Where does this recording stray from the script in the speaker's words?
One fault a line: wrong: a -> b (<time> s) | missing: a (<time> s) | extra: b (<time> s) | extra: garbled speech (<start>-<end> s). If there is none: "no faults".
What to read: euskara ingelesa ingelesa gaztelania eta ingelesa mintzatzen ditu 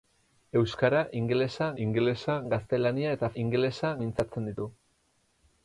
no faults